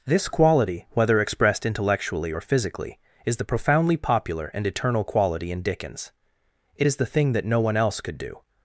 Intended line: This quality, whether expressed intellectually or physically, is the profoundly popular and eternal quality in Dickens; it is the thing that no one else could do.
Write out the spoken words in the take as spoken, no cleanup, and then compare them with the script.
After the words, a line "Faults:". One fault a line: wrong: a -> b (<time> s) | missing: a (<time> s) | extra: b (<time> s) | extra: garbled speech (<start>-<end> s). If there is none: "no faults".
This quality, whether expressed intellectually or physically, is the profoundly popular and eternal quality in Dickens; it is the thing that no one else could do.
Faults:
no faults